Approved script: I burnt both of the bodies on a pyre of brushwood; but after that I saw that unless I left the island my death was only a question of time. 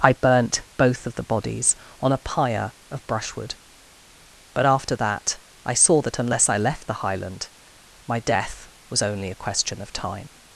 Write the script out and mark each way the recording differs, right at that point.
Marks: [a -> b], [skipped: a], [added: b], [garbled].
I burnt both of the bodies on a pyre of brushwood; but after that I saw that unless I left the [island -> highland] my death was only a question of time.